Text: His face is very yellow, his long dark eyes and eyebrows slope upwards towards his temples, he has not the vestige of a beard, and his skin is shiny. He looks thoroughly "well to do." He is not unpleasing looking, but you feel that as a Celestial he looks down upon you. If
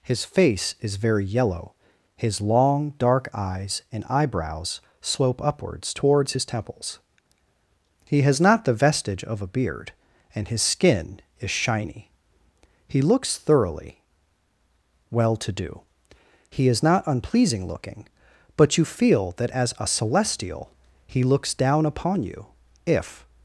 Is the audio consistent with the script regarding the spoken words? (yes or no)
yes